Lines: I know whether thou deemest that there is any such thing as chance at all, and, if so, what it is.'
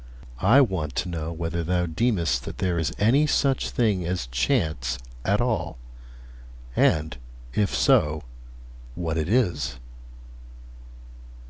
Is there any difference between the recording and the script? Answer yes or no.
yes